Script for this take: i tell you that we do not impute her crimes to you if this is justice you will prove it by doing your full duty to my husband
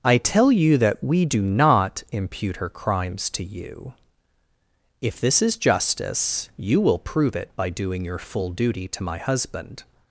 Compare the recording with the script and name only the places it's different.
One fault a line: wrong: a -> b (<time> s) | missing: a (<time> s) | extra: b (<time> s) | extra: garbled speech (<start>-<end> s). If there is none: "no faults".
no faults